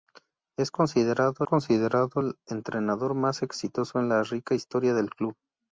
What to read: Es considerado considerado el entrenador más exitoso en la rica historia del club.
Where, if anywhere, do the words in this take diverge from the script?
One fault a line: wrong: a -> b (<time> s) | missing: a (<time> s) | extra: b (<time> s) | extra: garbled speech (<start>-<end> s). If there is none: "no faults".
no faults